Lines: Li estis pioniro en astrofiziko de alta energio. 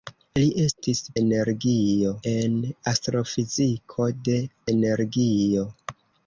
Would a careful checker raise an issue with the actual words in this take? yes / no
yes